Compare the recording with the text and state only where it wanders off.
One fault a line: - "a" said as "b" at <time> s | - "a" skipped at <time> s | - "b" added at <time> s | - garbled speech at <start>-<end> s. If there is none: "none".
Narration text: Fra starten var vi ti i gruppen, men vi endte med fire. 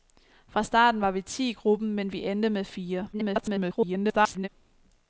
- garbled speech at 3.1-4.5 s